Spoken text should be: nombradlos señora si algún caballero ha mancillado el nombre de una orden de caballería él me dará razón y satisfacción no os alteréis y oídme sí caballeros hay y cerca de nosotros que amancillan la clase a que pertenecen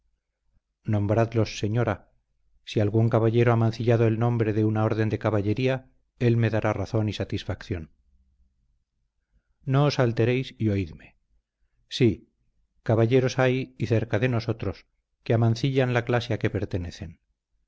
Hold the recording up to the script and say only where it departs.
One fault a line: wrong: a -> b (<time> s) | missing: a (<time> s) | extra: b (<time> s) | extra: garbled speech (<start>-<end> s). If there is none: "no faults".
no faults